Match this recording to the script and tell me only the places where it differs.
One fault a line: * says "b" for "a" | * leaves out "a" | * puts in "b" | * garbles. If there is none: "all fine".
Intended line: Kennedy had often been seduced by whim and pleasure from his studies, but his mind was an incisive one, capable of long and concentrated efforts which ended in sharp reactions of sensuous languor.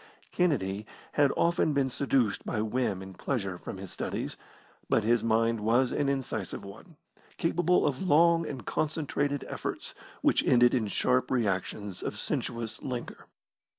all fine